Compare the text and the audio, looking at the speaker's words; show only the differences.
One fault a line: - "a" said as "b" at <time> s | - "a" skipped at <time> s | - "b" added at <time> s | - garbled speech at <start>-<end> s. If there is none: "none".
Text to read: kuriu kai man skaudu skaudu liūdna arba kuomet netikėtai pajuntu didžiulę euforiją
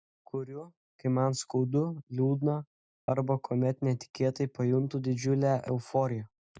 - "skaudu" skipped at 1.8 s